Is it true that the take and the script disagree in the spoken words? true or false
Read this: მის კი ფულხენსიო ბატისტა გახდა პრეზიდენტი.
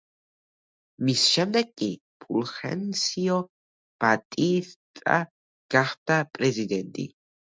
true